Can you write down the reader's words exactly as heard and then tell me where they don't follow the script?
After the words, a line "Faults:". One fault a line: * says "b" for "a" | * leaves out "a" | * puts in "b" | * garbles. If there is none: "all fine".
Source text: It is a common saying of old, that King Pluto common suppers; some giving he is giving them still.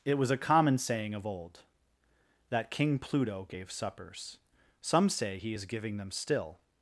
It was a common saying of old, that King Pluto gave suppers; some say he is giving them still.
Faults:
* says "was" for "is"
* says "gave" for "common"
* says "say" for "giving"